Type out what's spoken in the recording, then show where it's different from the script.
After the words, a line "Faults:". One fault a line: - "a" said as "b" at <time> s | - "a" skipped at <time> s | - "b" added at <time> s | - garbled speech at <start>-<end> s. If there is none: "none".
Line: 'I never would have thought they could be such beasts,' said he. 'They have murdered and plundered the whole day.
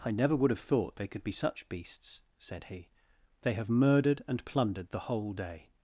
'I never would have thought they could be such beasts,' said he. 'They have murdered and plundered the whole day.
Faults:
none